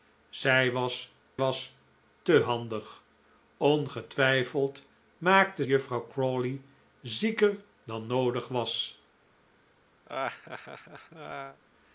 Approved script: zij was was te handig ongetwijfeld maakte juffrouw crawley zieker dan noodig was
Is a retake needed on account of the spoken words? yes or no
no